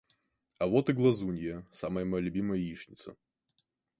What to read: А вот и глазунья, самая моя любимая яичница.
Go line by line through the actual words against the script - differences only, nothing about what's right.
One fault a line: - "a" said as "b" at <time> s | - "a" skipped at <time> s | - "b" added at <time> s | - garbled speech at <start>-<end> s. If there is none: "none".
none